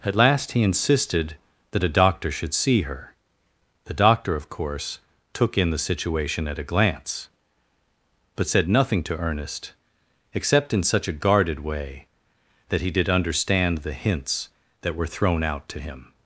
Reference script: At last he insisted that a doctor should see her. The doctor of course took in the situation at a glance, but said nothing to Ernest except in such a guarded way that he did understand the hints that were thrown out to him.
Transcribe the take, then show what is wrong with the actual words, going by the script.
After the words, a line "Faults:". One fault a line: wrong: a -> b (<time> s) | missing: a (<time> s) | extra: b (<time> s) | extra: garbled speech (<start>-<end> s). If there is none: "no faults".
At last he insisted that a doctor should see her. The doctor of course took in the situation at a glance, but said nothing to Ernest except in such a guarded way that he did understand the hints that were thrown out to him.
Faults:
no faults